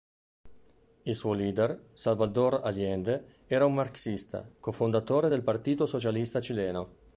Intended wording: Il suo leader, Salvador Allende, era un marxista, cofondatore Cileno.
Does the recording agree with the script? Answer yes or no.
no